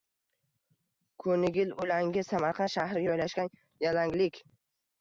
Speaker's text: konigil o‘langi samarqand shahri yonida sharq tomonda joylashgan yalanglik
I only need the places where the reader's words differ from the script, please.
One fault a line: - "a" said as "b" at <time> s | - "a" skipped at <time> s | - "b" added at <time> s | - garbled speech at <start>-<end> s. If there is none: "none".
- "yonida sharq tomonda" skipped at 3.0 s